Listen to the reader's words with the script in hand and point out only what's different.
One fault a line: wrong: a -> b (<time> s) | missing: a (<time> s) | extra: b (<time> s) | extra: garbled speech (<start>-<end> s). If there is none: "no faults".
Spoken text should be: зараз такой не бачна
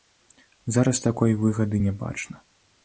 extra: выгады (1.4 s)